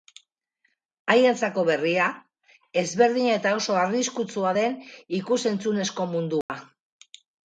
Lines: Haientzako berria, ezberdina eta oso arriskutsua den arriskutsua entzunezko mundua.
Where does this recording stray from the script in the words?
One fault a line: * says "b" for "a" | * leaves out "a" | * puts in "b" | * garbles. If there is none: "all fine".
* says "ikus" for "arriskutsua"